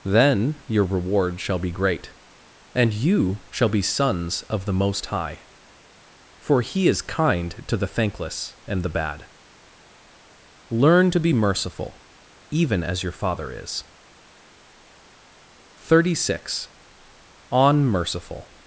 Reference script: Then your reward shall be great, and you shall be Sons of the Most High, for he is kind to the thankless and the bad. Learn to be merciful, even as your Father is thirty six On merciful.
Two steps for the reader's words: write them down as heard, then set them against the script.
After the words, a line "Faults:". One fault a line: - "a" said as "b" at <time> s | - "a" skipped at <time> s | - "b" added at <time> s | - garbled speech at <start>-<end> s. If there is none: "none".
Then your reward shall be great, and you shall be Sons of the Most High, for he is kind to the thankless and the bad. Learn to be merciful, even as your Father is thirty six On merciful.
Faults:
none